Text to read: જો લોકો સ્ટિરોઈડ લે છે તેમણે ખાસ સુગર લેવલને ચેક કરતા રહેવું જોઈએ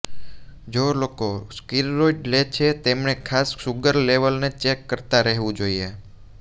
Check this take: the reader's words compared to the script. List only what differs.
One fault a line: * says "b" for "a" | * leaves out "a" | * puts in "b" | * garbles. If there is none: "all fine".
all fine